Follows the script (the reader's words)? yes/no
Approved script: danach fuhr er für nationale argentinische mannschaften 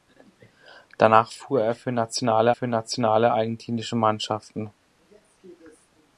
no